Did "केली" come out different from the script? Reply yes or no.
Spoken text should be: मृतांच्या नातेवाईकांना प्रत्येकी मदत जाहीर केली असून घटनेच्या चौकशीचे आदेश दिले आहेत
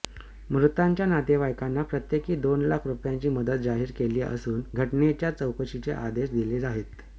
no